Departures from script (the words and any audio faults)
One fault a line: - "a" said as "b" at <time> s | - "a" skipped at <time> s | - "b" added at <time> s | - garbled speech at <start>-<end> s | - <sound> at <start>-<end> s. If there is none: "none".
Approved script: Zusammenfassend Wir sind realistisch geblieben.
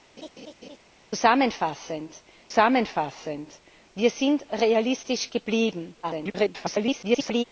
- laugh at 0.2-0.8 s
- "zusammenfassend" added at 2.5 s
- garbled speech at 6.0-7.4 s